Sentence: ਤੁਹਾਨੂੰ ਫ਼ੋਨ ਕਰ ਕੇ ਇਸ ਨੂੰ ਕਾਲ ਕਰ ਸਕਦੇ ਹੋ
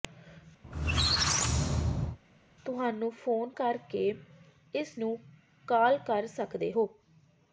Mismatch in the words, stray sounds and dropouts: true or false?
true